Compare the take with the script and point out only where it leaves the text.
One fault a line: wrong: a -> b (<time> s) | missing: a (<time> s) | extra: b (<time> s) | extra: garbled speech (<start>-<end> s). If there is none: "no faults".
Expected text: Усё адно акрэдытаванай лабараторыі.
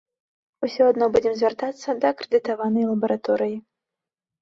extra: будзем звяртацца да (1.2 s)